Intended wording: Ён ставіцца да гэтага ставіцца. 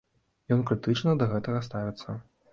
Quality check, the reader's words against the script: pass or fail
fail